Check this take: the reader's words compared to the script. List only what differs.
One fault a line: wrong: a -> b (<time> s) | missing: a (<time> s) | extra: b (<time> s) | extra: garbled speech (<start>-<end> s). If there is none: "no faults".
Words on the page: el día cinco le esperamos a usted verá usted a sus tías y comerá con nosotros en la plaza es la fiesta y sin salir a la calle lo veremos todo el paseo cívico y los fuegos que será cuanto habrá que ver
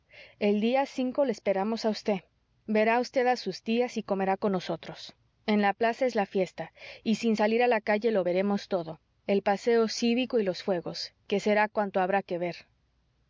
no faults